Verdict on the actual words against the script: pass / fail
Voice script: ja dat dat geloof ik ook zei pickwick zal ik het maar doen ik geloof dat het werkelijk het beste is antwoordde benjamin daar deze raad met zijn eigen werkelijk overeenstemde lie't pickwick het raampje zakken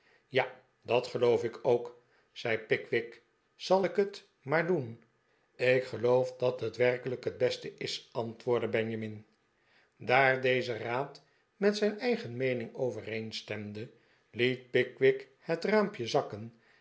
fail